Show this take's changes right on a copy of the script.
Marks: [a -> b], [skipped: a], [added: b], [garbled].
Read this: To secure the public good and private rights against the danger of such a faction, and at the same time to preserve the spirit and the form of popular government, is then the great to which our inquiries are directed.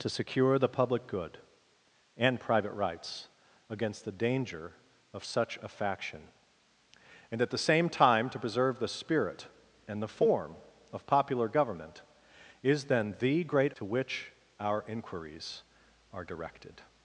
To secure the public good and private rights against the danger of such a faction, and at the same time to preserve the spirit and the form of popular government, is then the great to which our inquiries are directed.